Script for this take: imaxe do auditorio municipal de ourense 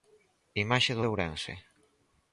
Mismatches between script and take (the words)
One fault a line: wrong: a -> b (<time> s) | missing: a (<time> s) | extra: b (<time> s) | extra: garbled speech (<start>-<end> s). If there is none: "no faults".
missing: auditorio municipal (1.0 s)